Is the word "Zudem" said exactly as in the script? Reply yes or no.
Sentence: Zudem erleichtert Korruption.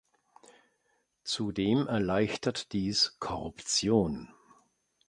yes